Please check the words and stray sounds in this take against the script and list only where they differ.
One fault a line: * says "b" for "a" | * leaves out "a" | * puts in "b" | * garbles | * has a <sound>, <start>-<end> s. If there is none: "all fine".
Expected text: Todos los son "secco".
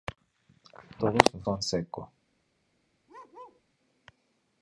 * has a bark, 3.1-3.6 s